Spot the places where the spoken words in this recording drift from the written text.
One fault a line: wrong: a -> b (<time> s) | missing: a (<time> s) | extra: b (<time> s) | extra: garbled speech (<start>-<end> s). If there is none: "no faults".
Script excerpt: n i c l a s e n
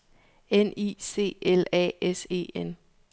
no faults